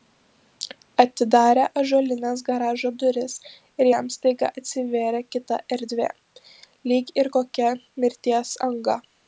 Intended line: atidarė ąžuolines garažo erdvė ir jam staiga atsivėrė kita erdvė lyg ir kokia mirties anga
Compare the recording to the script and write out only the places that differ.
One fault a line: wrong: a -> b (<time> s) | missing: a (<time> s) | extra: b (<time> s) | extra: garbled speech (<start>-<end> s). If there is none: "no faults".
wrong: erdvė -> duris (3.0 s)